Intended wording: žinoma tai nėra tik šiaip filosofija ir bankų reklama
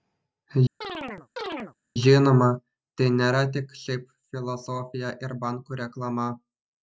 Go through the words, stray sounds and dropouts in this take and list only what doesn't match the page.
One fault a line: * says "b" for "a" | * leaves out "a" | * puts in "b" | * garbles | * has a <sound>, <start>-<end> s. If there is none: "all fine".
* has a chirp, 0.8-1.7 s